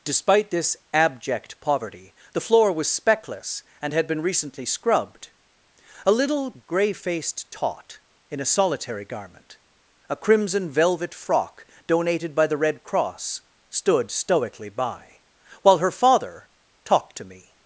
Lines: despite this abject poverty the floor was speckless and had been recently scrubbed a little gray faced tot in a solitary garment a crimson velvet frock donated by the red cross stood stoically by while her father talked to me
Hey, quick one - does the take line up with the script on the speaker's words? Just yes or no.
yes